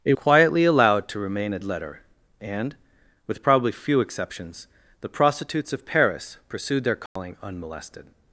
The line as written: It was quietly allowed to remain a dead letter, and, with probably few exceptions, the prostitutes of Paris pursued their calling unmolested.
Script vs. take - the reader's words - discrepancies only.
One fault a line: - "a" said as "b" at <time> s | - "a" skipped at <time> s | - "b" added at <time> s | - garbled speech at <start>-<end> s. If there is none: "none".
- "was" skipped at 0.1 s
- "dead" skipped at 1.6 s